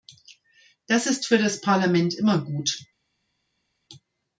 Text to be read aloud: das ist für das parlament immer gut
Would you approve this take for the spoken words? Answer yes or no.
yes